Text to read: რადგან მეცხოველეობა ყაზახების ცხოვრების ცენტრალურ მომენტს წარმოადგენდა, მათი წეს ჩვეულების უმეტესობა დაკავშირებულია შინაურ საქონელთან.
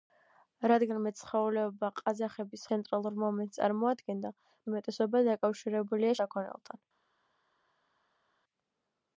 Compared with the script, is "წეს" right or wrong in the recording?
wrong